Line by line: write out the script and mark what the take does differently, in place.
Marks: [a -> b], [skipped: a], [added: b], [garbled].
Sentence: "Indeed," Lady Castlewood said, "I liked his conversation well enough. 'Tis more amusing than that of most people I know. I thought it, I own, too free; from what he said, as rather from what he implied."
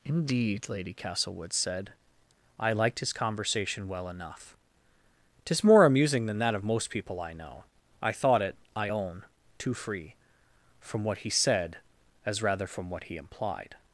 "Indeed," Lady Castlewood said, "I liked his conversation well enough. 'Tis more amusing than that of most people I know. I thought it, I own, too free; from what he said, as rather from what he implied."